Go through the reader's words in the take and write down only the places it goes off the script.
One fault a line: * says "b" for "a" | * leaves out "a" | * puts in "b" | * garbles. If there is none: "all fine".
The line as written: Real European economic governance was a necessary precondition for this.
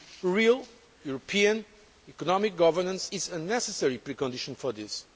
* says "is" for "was"